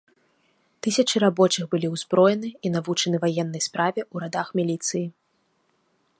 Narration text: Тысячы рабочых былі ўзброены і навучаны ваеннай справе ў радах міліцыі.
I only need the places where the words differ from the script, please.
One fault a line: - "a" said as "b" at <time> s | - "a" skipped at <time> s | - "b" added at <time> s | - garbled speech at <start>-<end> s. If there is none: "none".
none